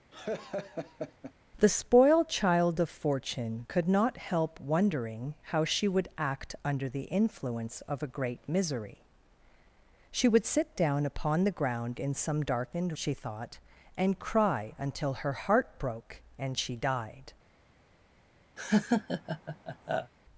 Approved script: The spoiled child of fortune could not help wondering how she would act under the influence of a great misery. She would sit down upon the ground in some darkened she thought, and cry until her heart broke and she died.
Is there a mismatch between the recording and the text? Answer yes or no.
no